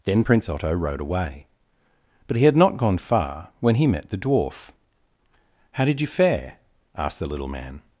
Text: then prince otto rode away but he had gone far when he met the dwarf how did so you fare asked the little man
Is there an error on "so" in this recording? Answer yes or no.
yes